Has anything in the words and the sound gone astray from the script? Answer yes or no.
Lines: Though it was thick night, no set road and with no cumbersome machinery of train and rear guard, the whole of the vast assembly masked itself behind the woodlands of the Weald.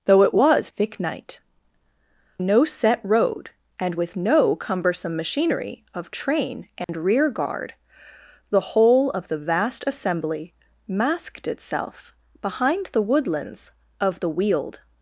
yes